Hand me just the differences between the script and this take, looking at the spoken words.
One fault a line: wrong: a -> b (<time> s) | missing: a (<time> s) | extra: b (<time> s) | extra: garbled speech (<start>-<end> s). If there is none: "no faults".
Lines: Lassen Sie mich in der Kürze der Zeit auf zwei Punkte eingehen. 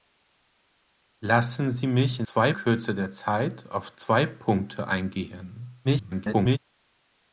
wrong: der -> zwei (2.2 s)
extra: garbled speech (5.8-6.6 s)